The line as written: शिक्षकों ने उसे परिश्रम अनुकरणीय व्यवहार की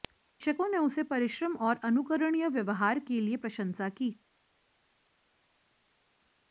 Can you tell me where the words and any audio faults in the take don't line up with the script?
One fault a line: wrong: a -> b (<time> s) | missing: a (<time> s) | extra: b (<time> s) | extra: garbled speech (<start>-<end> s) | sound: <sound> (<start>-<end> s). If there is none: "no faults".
extra: और (1.6 s)
extra: के लिए प्रशंसा (3.0 s)